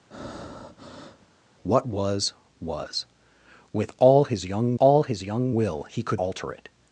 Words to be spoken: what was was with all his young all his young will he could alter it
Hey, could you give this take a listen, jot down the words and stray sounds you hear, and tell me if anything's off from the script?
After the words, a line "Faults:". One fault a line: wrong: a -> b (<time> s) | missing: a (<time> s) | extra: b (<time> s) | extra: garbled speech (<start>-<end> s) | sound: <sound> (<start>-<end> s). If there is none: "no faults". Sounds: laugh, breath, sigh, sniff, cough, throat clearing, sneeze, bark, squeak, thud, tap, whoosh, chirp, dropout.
what was was with all his young all his young will he could alter it
Faults:
sound: breath (0.1-1.3 s)